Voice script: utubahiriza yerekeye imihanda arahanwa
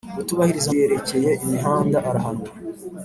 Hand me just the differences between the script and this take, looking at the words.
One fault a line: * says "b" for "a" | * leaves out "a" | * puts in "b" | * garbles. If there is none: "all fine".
all fine